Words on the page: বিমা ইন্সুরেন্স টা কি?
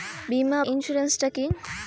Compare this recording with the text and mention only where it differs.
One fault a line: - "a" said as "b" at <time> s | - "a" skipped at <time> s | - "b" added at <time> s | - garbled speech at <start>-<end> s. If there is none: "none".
none